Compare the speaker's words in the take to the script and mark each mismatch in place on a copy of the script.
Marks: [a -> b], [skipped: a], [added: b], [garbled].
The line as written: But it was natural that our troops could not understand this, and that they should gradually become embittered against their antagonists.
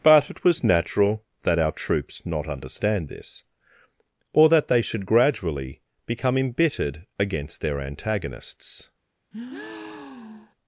But it was natural that our troops [skipped: could] not understand this, [and -> or] that they should gradually become embittered against their antagonists.